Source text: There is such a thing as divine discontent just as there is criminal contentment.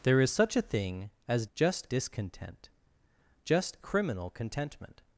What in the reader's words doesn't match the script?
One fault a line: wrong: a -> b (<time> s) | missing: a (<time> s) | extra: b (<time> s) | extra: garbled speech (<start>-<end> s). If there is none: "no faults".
wrong: divine -> just (1.5 s)
missing: as there is (3.8 s)